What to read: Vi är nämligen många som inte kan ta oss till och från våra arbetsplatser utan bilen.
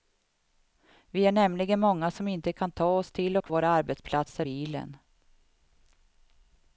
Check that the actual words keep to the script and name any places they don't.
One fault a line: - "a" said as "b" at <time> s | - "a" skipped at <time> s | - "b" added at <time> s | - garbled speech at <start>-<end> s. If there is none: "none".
- "från" skipped at 3.5 s
- "utan" skipped at 4.5 s